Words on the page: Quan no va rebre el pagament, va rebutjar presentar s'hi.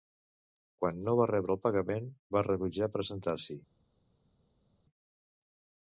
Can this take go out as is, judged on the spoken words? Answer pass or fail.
pass